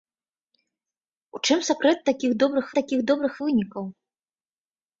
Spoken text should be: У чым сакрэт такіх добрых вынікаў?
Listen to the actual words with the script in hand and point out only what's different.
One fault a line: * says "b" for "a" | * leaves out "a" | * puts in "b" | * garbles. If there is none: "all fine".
* puts in "такіх добрых"